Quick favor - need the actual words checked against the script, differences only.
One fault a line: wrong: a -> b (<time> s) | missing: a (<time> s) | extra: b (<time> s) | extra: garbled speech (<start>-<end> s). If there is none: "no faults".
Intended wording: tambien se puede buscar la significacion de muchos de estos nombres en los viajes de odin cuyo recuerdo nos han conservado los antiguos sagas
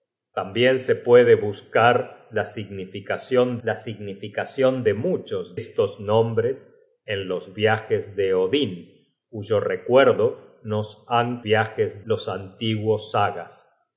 extra: la significacion (3.6 s)
missing: de (5.6 s)
wrong: conservado -> viajes (11.4 s)